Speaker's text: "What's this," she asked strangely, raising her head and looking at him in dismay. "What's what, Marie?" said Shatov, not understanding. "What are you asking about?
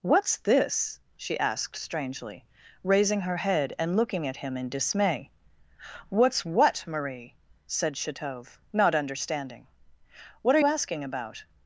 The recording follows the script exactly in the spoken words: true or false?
false